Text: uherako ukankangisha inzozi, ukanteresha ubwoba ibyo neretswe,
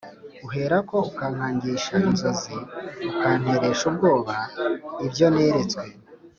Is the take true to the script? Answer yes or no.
yes